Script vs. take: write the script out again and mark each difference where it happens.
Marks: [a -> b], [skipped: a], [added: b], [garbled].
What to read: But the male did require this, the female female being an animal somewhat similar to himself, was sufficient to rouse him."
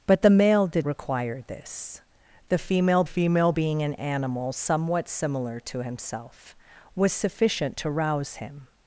But the male did require this, the female female being an animal somewhat similar to himself, was sufficient to rouse him."